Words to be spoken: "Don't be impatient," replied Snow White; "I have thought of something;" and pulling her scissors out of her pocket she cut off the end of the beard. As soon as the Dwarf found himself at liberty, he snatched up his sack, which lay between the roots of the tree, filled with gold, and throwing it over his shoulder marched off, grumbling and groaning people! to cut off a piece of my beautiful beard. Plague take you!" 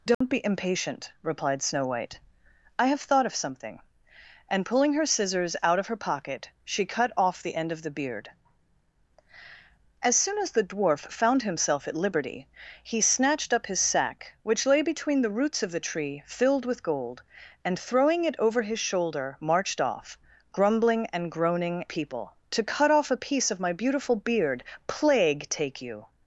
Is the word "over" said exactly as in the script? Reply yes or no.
yes